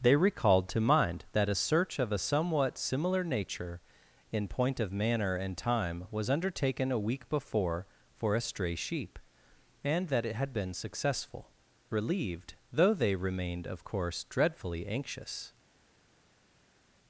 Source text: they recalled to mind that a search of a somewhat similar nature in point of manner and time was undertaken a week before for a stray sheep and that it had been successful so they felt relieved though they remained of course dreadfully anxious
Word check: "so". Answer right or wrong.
wrong